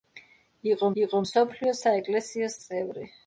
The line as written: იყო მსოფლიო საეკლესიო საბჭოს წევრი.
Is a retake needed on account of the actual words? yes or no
yes